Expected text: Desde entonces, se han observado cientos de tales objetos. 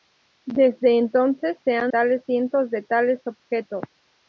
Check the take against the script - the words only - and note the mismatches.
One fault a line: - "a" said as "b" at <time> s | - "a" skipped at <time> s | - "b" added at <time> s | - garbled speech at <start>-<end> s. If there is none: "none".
- "observado" said as "tales" at 1.8 s